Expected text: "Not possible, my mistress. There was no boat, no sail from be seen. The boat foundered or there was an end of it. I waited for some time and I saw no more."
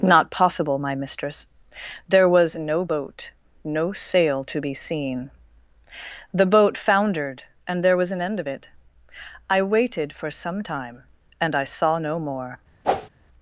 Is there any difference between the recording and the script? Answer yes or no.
yes